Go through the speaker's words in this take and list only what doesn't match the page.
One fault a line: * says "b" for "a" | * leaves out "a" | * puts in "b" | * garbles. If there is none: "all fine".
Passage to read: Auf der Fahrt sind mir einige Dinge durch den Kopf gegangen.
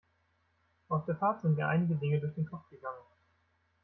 all fine